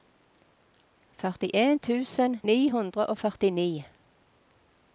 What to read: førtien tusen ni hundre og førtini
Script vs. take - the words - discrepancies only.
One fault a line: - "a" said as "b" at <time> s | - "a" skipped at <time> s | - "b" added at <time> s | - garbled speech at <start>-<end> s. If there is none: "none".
none